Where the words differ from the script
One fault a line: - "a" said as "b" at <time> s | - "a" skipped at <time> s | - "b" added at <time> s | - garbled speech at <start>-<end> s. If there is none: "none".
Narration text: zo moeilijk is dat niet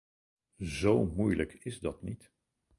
none